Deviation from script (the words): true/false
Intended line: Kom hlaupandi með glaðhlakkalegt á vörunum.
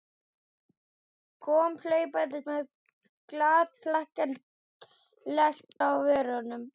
false